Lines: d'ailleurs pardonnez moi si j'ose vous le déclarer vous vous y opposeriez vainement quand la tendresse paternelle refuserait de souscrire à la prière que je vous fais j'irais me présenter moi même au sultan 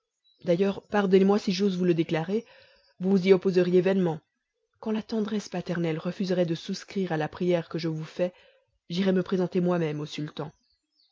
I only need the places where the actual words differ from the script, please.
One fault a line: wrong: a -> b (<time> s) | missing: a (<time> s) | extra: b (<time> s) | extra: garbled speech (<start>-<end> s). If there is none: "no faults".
no faults